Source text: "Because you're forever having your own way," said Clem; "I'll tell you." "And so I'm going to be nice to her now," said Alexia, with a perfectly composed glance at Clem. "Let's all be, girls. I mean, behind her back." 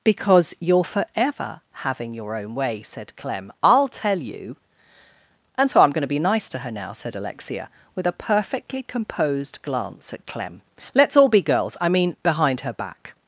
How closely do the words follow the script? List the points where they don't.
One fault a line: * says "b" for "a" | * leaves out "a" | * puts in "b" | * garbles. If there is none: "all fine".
all fine